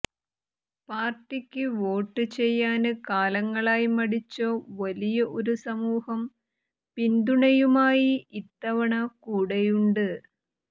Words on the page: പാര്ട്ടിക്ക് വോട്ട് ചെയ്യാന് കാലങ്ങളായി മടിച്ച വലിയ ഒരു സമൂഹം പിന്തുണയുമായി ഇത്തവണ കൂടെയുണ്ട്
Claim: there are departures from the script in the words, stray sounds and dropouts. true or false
false